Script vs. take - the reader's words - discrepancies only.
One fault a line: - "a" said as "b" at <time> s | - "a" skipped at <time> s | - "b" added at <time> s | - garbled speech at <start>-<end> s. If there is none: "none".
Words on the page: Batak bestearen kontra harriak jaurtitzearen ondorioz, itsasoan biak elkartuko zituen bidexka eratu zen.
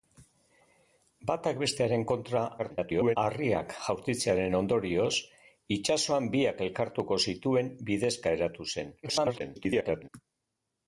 - garbled speech at 2.6-3.2 s
- garbled speech at 9.0-10.1 s